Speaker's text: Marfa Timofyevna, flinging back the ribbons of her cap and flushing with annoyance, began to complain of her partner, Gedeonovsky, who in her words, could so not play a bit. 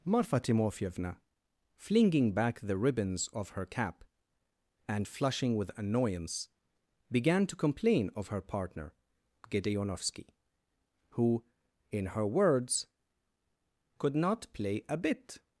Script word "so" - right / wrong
wrong